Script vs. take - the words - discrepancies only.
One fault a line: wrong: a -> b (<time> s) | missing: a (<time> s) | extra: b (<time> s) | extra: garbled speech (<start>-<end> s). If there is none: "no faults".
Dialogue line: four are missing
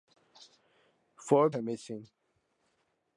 no faults